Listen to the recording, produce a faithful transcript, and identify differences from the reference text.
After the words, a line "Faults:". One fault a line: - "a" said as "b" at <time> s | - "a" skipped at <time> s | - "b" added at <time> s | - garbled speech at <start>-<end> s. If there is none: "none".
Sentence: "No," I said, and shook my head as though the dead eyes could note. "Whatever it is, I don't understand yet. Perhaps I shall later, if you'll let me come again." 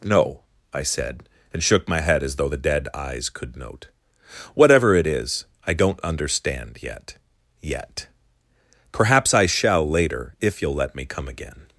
"No," I said, and shook my head as though the dead eyes could note. "Whatever it is, I don't understand yet yet. Perhaps I shall later, if you'll let me come again."
Faults:
- "yet" added at 7.6 s